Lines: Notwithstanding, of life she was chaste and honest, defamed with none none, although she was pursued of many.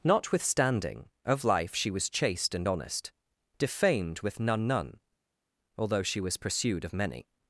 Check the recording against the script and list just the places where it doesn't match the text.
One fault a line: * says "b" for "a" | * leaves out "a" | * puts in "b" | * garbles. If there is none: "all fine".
all fine